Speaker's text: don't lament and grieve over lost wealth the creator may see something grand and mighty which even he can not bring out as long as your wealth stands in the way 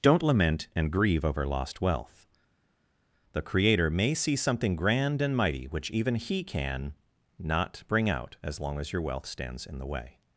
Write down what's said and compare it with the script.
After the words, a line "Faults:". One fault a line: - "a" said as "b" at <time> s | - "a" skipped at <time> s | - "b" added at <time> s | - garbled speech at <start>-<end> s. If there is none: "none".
don't lament and grieve over lost wealth the creator may see something grand and mighty which even he can not bring out as long as your wealth stands in the way
Faults:
none